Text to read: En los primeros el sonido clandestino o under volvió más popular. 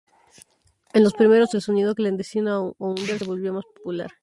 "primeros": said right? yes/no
yes